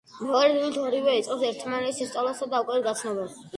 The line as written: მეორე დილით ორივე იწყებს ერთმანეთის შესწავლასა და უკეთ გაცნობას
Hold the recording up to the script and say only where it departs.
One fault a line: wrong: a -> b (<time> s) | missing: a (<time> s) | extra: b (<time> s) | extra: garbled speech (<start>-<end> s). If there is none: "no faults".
no faults